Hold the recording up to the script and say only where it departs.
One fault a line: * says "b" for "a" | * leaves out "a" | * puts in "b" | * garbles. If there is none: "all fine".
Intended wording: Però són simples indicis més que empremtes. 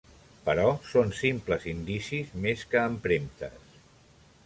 all fine